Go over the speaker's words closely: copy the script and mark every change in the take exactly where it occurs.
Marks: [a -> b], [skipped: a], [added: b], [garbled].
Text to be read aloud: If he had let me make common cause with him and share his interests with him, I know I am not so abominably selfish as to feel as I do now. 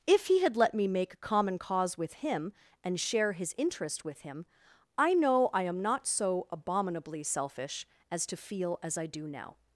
If he had let me make common cause with him and share his [interests -> interest] with him, I know I am not so abominably selfish as to feel as I do now.